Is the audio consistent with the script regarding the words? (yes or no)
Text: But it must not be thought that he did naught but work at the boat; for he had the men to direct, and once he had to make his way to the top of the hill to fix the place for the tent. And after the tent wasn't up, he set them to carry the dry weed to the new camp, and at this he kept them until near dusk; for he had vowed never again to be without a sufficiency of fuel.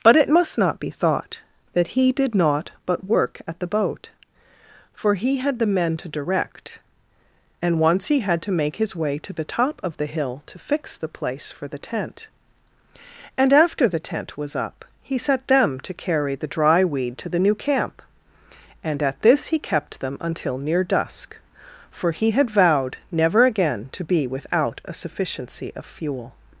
no